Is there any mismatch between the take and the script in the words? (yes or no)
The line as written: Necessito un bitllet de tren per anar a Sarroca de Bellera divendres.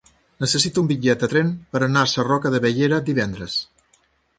no